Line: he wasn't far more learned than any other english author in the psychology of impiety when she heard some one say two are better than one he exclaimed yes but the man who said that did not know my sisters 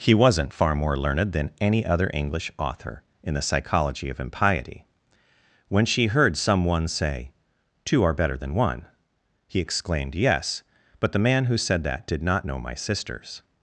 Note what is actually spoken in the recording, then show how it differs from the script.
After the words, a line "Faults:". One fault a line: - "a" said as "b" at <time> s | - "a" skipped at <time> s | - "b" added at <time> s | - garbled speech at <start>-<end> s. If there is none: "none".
he wasn't far more learned than any other english author in the psychology of impiety when she heard some one say two are better than one he exclaimed yes but the man who said that did not know my sisters
Faults:
none